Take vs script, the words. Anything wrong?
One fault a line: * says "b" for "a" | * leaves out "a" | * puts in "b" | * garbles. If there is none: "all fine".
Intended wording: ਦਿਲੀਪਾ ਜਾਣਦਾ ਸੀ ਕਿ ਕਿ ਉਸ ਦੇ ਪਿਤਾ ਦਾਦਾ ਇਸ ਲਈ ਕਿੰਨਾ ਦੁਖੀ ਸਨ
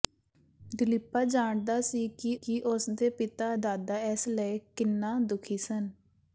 all fine